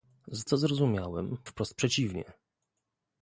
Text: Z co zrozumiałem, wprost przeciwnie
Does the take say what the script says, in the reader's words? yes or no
yes